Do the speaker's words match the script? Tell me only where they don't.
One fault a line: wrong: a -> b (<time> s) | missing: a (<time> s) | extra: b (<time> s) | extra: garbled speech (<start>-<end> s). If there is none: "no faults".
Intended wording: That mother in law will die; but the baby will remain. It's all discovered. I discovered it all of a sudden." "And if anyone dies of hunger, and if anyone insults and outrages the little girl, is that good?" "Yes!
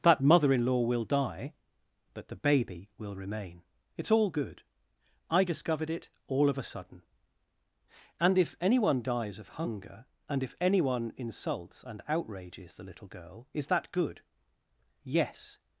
wrong: discovered -> good (4.3 s)